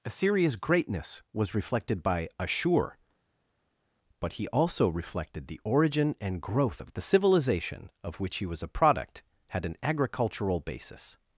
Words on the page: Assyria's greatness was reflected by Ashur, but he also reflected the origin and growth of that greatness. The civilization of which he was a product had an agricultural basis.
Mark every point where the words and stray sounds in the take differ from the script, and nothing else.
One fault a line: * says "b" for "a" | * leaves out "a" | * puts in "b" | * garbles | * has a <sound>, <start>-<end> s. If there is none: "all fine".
* leaves out "that greatness"